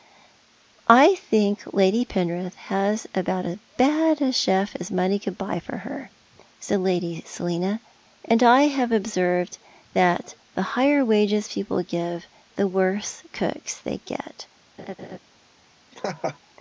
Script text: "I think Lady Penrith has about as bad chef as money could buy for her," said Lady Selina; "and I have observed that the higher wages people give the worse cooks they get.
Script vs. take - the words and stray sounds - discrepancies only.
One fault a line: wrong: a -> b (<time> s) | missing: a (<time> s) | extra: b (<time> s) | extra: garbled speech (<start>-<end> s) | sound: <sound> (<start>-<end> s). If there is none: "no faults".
extra: a (4.2 s)
sound: laugh (14.8-15.2 s)
sound: laugh (15.9-16.4 s)